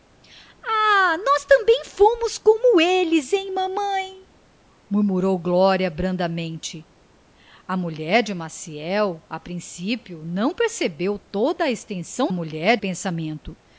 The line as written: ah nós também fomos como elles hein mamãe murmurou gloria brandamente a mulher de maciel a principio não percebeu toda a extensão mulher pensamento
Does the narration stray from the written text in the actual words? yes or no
no